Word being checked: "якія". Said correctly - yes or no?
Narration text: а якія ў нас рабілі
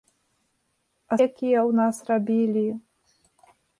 yes